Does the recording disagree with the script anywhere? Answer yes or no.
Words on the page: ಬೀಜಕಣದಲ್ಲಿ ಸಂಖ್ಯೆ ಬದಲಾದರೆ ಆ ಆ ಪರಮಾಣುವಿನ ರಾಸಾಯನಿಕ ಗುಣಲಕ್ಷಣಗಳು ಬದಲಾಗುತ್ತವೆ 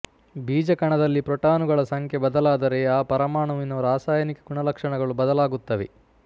yes